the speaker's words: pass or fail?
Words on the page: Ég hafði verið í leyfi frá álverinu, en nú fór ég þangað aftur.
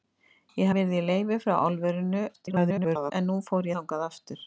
fail